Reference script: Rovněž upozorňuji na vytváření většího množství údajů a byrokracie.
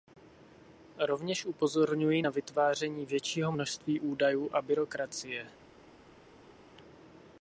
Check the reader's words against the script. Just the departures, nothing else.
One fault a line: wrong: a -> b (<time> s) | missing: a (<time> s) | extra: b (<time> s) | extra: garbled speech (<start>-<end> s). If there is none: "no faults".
no faults